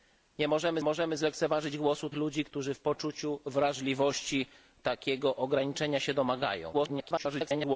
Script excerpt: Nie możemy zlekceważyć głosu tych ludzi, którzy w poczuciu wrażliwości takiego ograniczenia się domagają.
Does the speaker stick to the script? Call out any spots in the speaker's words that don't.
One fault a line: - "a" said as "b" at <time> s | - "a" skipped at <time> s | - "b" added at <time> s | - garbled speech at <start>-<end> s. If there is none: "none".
- "możemy" added at 0.8 s
- "tych" skipped at 2.1 s
- garbled speech at 6.7-7.8 s